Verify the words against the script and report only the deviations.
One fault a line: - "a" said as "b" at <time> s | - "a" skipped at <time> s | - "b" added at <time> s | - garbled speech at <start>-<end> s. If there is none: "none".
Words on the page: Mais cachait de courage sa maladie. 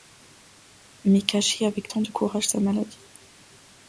- "avec tant" added at 1.7 s